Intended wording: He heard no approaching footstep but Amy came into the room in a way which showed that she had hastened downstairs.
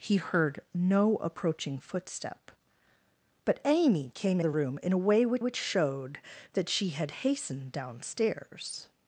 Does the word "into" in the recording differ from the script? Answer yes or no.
yes